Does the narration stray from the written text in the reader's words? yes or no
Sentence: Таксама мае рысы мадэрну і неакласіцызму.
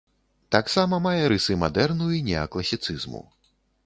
no